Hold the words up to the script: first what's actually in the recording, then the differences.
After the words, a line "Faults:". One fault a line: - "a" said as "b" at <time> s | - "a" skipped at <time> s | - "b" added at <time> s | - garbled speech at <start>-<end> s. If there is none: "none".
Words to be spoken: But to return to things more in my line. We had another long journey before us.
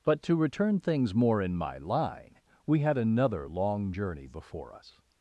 But to return things more in my line. We had another long journey before us.
Faults:
- "to" skipped at 0.8 s